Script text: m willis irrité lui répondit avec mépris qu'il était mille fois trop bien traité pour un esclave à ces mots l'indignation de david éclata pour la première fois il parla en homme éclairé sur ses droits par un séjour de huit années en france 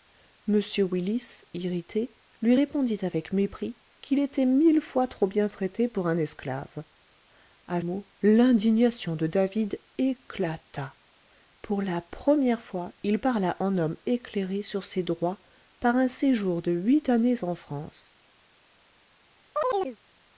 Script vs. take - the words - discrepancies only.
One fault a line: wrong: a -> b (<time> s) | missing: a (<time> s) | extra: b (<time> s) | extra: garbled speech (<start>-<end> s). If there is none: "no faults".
missing: ces (7.8 s)